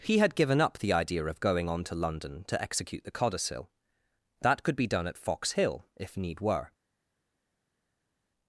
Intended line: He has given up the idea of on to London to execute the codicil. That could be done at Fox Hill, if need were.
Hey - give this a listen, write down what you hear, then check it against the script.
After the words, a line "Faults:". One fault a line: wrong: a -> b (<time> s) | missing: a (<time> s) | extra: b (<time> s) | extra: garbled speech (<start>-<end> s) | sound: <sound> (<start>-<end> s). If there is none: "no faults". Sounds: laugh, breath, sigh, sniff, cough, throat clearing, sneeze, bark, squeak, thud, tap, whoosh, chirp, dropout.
He had given up the idea of going on to London to execute the codicil. That could be done at Fox Hill, if need were.
Faults:
wrong: has -> had (0.2 s)
extra: going (1.4 s)